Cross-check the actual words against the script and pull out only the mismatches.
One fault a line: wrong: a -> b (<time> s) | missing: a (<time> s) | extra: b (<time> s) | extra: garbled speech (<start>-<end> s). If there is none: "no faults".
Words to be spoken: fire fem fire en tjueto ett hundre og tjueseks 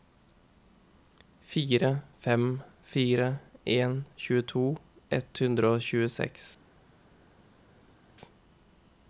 no faults